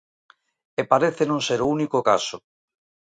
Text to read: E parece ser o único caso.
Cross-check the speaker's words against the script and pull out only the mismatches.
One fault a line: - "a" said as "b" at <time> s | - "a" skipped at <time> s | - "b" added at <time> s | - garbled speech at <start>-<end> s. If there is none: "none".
- "non" added at 1.3 s